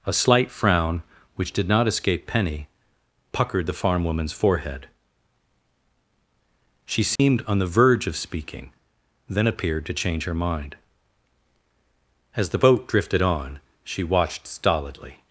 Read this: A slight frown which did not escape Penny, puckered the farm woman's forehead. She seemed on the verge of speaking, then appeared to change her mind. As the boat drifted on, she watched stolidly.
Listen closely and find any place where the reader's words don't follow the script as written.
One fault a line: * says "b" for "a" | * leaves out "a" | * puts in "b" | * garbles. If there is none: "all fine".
all fine